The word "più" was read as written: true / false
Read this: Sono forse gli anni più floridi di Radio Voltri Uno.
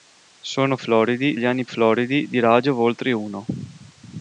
false